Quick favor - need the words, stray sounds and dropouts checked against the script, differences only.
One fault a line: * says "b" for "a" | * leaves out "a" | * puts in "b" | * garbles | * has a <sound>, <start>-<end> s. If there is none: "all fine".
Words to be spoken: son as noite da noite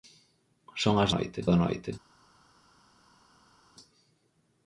all fine